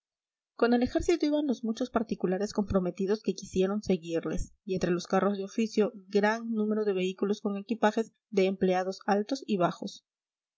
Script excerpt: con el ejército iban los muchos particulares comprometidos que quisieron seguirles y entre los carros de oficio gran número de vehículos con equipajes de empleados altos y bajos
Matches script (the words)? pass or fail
pass